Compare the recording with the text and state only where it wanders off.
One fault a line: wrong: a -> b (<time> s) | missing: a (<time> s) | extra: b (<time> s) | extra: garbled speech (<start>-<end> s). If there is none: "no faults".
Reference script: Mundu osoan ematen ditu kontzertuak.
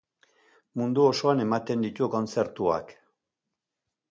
no faults